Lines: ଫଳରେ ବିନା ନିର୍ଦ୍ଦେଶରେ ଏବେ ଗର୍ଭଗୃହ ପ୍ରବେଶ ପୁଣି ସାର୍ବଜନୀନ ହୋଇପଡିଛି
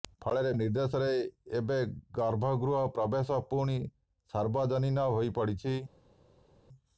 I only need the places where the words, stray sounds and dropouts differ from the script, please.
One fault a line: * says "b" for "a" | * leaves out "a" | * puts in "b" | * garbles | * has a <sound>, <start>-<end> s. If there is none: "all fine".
* leaves out "ବିନା"